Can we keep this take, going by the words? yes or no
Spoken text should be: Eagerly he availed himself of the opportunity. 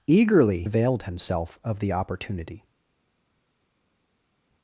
no